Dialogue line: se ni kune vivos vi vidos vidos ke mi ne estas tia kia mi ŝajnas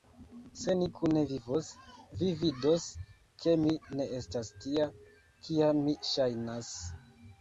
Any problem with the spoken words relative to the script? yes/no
yes